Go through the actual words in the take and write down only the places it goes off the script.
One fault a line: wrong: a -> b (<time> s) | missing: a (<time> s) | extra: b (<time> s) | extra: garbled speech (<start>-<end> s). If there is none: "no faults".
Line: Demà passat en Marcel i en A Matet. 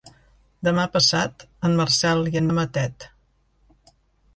no faults